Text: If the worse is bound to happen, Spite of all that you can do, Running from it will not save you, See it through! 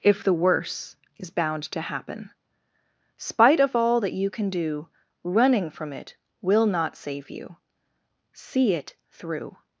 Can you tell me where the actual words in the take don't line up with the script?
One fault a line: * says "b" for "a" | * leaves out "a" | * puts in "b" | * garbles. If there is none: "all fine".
all fine